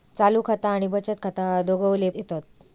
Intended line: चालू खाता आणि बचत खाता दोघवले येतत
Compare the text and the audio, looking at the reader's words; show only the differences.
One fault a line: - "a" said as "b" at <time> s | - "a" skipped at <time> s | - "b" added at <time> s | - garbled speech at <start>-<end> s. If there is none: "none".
none